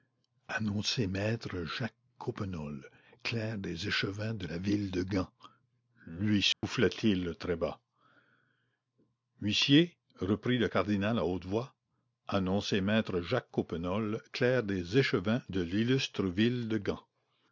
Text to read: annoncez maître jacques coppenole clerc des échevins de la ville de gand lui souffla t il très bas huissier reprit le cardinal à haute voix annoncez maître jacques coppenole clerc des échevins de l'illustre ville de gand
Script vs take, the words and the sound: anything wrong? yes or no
yes